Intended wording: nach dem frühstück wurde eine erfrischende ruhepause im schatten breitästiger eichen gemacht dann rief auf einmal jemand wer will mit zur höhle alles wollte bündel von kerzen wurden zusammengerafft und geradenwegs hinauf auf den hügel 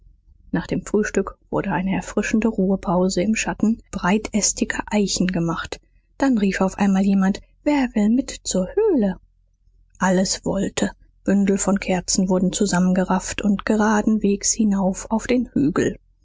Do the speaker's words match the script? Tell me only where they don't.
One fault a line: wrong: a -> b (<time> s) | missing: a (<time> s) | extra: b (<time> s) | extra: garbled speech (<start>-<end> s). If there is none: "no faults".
no faults